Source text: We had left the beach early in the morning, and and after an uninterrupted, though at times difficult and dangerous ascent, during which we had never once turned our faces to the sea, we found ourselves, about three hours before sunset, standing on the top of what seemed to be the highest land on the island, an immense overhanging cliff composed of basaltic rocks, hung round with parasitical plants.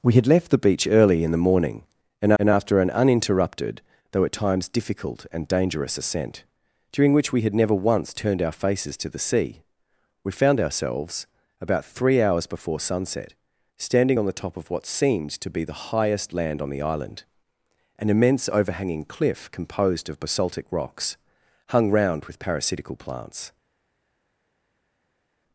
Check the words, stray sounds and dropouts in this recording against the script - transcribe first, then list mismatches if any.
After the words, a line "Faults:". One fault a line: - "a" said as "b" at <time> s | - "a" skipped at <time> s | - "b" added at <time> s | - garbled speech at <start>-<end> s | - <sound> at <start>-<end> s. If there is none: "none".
We had left the beach early in the morning, and and after an uninterrupted, though at times difficult and dangerous ascent, during which we had never once turned our faces to the sea, we found ourselves, about three hours before sunset, standing on the top of what seemed to be the highest land on the island, an immense overhanging cliff composed of basaltic rocks, hung round with parasitical plants.
Faults:
none